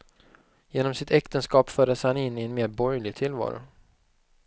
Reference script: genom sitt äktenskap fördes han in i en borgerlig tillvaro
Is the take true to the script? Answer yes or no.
no